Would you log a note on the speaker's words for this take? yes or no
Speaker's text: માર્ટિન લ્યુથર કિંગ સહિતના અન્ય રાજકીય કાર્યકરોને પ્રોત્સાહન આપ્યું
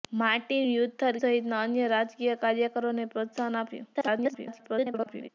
yes